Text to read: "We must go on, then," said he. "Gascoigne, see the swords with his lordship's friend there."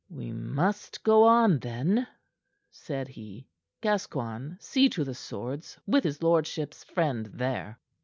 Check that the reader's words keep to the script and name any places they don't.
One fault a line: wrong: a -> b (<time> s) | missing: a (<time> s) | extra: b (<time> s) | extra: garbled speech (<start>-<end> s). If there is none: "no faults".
extra: to (4.9 s)